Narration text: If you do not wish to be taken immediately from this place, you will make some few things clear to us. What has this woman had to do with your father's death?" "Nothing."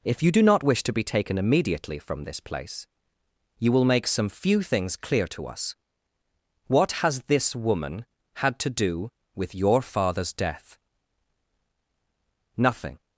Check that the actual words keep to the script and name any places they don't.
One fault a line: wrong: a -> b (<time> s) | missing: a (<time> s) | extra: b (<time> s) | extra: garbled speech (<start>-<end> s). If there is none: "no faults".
no faults